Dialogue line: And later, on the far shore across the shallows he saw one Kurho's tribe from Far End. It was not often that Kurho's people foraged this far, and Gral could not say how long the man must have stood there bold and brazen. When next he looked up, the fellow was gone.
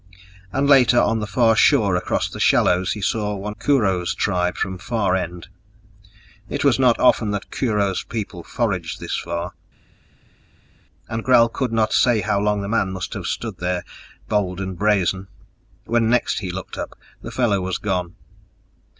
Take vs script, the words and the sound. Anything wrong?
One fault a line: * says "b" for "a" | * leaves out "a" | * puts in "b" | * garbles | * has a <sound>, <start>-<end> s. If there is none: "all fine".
all fine